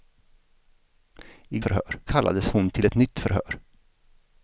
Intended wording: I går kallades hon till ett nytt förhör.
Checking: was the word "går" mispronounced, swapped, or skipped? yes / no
yes